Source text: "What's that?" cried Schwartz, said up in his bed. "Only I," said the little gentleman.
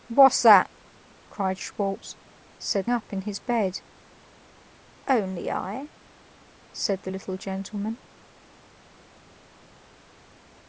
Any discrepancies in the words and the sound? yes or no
no